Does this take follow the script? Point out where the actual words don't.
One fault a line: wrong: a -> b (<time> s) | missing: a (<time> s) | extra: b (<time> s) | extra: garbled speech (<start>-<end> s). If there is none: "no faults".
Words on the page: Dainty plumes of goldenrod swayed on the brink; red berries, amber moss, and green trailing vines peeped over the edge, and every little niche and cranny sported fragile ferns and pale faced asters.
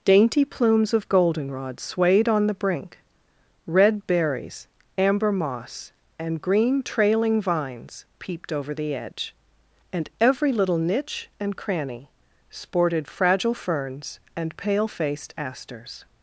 no faults